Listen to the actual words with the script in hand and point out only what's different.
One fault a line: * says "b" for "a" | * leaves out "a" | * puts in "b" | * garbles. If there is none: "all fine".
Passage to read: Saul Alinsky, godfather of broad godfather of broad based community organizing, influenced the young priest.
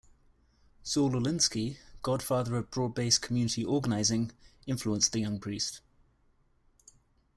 * leaves out "godfather of broad"